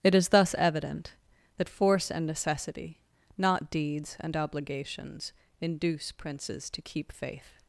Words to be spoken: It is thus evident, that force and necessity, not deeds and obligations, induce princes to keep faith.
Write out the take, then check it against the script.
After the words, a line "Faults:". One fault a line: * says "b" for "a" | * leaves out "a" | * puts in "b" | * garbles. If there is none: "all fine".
It is thus evident, that force and necessity, not deeds and obligations, induce princes to keep faith.
Faults:
all fine